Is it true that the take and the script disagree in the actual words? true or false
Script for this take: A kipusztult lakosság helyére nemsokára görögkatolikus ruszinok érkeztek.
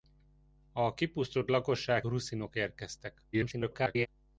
true